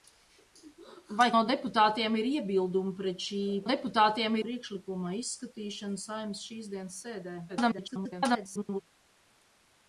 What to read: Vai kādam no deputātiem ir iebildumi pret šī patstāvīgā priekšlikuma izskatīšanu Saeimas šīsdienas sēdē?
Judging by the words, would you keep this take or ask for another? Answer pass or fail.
fail